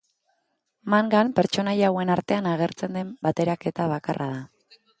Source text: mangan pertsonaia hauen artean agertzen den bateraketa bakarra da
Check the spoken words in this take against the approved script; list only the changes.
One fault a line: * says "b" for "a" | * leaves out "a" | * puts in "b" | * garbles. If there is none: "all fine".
all fine